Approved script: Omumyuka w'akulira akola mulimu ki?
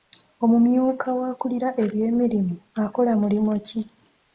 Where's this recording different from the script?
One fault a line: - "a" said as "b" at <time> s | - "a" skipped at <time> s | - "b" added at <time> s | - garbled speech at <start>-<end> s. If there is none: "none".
- "eby'emirimu" added at 1.8 s